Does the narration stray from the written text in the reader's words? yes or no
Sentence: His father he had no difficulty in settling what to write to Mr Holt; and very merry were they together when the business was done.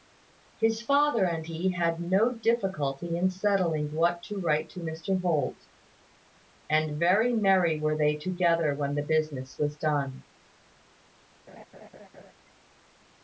yes